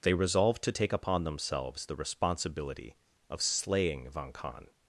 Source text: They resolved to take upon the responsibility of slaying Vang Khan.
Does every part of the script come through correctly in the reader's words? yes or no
no